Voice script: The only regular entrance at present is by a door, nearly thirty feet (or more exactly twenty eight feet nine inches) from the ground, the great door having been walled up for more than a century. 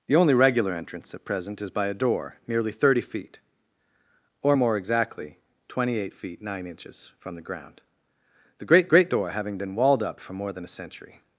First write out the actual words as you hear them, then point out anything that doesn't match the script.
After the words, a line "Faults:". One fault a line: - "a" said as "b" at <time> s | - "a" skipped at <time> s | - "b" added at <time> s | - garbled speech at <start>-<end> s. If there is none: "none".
The only regular entrance at present is by a door, nearly thirty feet (or more exactly twenty eight feet nine inches) from the ground, the great great door having been walled up for more than a century.
Faults:
- "great" added at 8.9 s